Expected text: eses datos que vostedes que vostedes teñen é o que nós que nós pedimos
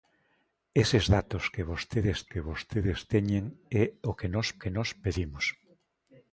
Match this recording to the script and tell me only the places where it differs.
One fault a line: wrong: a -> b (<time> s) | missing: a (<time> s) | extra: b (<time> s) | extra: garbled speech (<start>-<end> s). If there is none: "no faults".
no faults